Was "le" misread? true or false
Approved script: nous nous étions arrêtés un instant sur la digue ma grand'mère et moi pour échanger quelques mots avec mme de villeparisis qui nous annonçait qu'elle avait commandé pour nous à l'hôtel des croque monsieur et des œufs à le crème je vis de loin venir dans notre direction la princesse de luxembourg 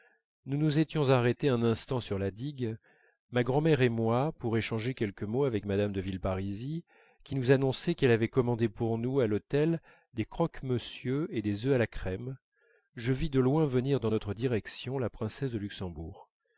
true